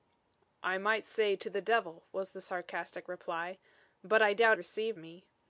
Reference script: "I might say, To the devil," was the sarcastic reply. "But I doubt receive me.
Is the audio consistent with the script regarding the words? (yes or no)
yes